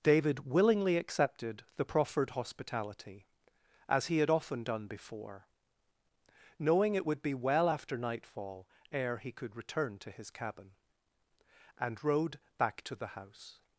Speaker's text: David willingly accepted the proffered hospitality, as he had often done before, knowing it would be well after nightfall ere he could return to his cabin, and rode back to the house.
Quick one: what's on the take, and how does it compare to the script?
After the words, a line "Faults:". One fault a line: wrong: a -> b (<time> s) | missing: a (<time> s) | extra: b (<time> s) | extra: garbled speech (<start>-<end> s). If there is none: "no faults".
David willingly accepted the proffered hospitality, as he had often done before, knowing it would be well after nightfall ere he could return to his cabin, and rode back to the house.
Faults:
no faults